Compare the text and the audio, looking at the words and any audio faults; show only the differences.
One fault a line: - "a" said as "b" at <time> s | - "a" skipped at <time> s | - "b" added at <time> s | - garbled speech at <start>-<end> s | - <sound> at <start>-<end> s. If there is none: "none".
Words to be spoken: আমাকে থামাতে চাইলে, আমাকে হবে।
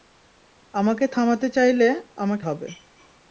none